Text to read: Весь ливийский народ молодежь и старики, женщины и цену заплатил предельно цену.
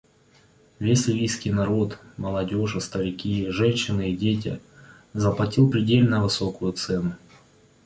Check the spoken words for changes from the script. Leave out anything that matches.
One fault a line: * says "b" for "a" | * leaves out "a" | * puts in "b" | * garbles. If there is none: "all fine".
* says "дети" for "цену"
* puts in "высокую"